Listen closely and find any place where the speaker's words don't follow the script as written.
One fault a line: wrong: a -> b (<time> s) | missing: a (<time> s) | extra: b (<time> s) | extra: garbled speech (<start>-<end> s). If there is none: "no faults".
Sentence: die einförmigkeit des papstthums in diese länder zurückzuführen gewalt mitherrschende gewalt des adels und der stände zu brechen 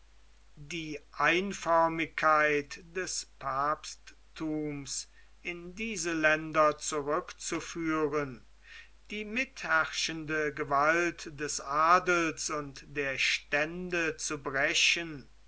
wrong: gewalt -> die (9.1 s)